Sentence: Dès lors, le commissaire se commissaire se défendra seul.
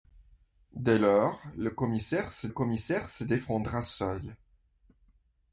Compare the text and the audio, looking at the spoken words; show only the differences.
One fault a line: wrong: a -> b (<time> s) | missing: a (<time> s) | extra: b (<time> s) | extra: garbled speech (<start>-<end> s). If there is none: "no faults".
no faults